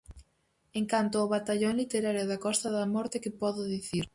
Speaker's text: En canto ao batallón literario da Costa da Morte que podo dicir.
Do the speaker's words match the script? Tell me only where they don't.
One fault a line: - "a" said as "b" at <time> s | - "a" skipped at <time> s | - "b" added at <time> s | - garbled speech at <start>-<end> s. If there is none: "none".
none